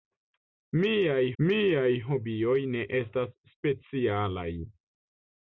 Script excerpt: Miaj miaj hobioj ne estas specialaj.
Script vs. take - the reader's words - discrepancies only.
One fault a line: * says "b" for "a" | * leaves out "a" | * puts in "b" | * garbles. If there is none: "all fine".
all fine